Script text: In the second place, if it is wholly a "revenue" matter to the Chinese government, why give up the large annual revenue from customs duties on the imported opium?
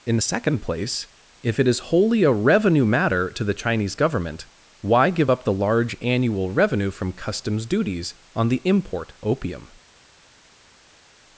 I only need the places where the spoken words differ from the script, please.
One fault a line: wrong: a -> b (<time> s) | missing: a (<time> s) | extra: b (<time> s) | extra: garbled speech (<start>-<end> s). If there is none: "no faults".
wrong: imported -> import (8.7 s)